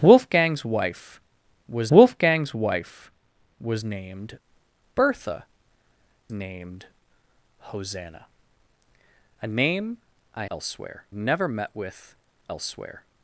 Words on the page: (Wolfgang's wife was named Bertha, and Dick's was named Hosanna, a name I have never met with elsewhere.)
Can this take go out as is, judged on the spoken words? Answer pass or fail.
fail